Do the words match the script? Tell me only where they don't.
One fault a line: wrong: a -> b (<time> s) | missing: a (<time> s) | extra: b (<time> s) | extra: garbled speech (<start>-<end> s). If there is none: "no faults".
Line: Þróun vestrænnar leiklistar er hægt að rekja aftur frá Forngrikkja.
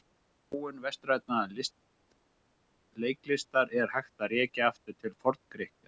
wrong: frá -> til (5.0 s)